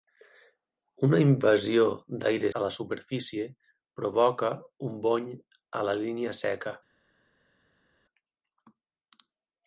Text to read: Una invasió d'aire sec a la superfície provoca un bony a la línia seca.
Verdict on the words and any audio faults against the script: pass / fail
fail